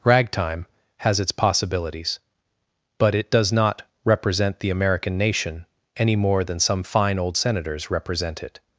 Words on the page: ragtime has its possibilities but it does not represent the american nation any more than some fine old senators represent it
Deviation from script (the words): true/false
false